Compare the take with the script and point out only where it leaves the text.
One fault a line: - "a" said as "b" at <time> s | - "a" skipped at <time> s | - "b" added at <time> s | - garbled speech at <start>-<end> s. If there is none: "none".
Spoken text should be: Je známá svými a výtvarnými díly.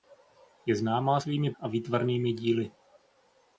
none